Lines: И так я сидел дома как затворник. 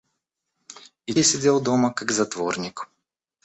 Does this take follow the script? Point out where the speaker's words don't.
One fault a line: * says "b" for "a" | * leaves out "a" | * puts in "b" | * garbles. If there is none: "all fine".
* leaves out "так"